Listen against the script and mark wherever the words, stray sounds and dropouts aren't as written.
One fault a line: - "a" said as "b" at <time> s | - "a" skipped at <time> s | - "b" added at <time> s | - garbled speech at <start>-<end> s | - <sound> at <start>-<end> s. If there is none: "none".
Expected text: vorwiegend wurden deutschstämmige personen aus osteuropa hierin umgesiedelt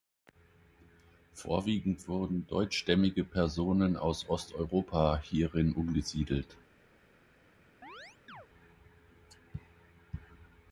- chirp at 7.8-8.5 s